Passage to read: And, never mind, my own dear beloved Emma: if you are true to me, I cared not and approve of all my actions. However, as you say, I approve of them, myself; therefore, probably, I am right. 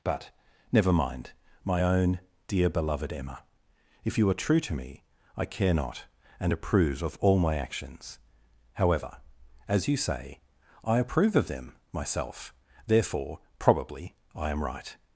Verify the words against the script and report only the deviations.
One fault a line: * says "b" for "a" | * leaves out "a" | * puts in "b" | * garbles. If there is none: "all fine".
* says "But" for "And"
* says "care" for "cared"